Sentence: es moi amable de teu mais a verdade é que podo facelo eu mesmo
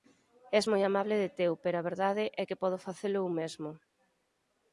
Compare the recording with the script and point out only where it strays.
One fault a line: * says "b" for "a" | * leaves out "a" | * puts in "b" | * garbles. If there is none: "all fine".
* says "pero" for "mais"